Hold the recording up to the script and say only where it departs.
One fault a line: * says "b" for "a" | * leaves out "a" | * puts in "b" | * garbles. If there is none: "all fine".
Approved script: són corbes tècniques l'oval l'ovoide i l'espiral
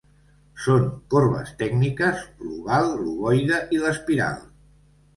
all fine